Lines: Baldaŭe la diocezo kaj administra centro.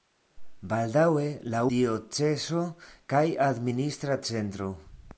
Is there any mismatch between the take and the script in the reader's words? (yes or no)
no